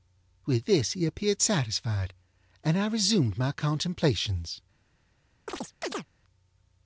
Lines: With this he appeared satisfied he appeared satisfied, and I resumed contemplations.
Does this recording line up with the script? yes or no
no